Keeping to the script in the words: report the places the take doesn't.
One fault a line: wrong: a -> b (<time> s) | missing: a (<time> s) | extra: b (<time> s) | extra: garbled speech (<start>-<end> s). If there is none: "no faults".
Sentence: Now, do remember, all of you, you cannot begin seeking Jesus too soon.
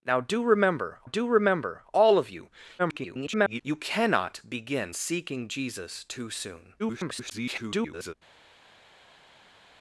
extra: do remember (1.0 s)
extra: garbled speech (2.8-3.6 s)
extra: garbled speech (6.8-8.1 s)